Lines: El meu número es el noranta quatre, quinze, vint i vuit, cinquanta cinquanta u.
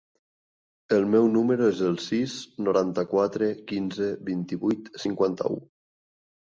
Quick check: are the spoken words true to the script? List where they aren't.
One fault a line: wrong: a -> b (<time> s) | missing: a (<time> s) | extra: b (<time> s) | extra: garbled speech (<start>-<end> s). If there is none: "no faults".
extra: sis (2.1 s)
missing: cinquanta (5.5 s)